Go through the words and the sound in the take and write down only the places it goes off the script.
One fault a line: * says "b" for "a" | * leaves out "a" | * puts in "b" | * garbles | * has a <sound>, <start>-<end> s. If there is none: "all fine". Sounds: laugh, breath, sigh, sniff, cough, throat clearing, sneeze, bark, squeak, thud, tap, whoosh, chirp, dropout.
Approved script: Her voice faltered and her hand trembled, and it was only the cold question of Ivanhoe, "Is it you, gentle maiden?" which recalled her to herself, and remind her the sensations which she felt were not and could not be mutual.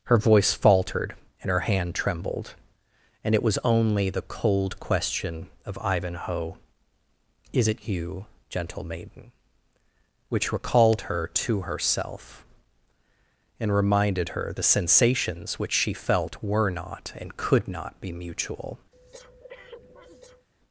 * says "reminded" for "remind"
* has a breath, 18.9-20.5 s